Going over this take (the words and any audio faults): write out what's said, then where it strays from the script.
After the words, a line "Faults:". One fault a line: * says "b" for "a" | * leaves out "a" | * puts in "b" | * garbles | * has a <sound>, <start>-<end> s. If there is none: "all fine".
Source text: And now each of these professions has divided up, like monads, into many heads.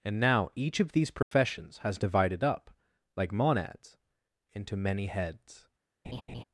And now each of these professions has divided up, like monads, into many heads.
Faults:
* has a dropout, 1.2-1.3 s
* has a laugh, 6.0-6.4 s